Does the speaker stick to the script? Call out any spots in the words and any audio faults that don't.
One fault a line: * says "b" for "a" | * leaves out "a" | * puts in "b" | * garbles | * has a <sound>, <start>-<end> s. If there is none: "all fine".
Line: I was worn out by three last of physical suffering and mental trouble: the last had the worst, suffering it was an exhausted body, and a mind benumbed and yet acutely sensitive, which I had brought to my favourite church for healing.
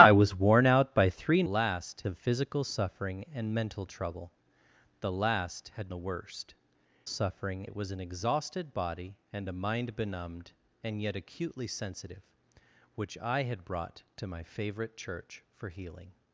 all fine